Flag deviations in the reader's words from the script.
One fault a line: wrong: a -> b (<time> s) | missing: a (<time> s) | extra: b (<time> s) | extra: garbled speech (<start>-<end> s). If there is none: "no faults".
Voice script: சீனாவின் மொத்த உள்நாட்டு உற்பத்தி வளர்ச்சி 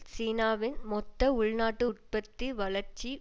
no faults